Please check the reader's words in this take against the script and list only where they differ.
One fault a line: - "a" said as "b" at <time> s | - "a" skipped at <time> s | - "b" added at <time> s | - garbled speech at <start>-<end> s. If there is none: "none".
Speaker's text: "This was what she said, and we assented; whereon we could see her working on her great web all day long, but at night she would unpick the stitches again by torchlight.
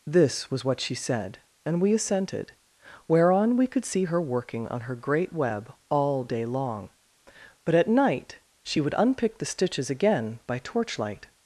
none